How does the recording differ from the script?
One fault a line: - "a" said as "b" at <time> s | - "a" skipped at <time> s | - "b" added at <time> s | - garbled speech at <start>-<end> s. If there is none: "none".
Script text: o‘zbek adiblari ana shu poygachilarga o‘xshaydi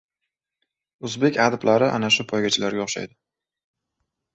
none